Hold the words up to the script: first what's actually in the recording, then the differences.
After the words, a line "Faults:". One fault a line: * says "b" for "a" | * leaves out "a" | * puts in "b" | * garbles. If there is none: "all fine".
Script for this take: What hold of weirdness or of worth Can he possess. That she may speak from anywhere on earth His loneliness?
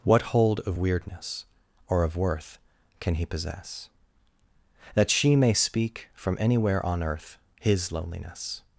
What hold of weirdness or of worth Can he possess. That she may speak from anywhere on earth His loneliness?
Faults:
all fine